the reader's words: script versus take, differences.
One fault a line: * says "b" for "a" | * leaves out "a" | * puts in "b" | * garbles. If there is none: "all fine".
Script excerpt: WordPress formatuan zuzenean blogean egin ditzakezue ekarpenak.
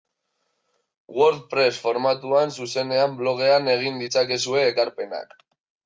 all fine